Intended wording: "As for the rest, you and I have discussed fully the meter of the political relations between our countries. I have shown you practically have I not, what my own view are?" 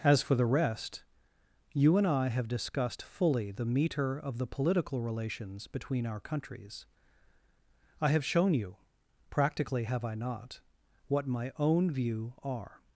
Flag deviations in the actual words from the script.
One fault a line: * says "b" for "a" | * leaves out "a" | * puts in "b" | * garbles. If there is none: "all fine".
all fine